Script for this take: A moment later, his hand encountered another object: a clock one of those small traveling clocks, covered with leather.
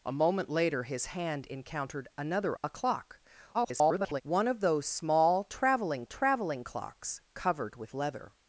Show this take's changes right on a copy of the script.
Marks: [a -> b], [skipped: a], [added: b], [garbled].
A moment later, his hand encountered another [skipped: object:] a clock [garbled] one of those small traveling [added: traveling] clocks, covered with leather.